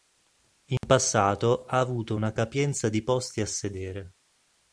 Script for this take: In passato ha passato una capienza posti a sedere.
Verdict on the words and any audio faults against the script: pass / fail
fail